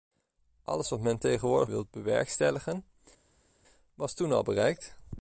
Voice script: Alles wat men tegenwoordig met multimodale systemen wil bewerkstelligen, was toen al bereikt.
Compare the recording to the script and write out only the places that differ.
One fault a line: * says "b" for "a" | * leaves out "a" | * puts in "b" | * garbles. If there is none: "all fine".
* leaves out "met multimodale systemen"